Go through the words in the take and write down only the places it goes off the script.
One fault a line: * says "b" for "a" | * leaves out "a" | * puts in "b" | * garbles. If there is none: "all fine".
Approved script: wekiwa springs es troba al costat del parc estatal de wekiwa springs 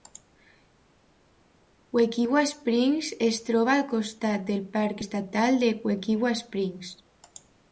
all fine